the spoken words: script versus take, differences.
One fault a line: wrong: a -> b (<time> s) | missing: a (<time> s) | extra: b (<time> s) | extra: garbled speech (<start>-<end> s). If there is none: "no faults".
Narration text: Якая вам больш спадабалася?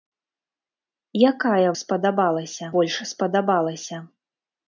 wrong: вам -> спадабалася (1.8 s)